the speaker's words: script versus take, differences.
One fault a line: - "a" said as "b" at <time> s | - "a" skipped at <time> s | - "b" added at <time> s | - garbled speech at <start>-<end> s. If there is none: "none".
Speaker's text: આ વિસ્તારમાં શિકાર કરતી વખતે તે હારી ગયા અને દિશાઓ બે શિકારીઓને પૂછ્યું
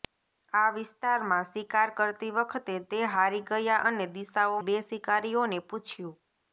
none